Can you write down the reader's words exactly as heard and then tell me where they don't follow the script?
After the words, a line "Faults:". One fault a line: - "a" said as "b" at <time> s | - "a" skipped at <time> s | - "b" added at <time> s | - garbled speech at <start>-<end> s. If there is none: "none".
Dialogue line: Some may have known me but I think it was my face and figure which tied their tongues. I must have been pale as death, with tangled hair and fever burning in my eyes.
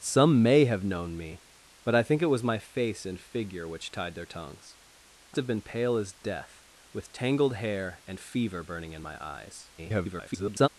Some may have known me but I think it was my face and figure which tied their tongues. I have been pale as death, with tangled hair and fever burning in my eyes. [garbled]
Faults:
- "must" skipped at 5.4 s
- garbled speech at 9.8-10.7 s